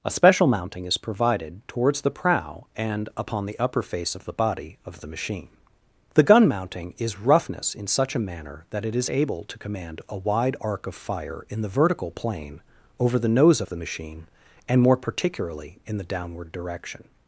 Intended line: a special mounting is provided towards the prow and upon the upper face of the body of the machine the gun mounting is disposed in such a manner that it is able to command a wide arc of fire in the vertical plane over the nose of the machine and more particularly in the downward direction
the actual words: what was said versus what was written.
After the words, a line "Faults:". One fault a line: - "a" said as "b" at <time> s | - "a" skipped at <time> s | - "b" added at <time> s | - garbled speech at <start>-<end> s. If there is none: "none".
a special mounting is provided towards the prow and upon the upper face of the body of the machine the gun mounting is roughness in such a manner that it is able to command a wide arc of fire in the vertical plane over the nose of the machine and more particularly in the downward direction
Faults:
- "disposed" said as "roughness" at 7.2 s